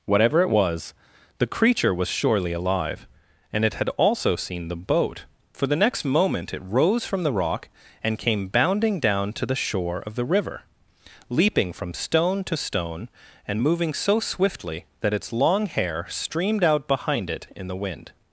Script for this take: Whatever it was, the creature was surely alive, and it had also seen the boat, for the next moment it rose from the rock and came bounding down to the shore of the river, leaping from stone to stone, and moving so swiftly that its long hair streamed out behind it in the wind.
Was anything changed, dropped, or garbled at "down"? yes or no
no